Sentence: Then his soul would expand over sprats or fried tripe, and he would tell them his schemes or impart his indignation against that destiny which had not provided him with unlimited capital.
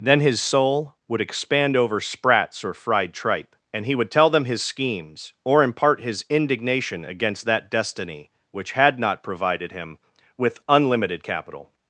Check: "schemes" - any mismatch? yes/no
no